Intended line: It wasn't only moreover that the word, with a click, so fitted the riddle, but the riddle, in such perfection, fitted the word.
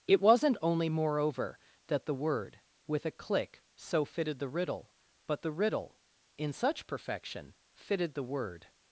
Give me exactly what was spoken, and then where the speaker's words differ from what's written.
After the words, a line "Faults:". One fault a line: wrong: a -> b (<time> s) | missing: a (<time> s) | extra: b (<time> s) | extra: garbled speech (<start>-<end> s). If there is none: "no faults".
It wasn't only moreover that the word, with a click, so fitted the riddle, but the riddle, in such perfection, fitted the word.
Faults:
no faults